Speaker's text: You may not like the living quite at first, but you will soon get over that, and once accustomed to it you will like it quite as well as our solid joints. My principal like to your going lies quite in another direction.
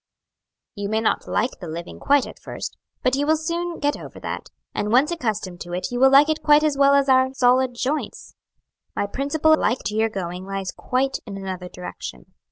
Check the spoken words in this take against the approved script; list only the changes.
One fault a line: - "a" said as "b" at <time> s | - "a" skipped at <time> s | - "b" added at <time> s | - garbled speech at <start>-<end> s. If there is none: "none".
none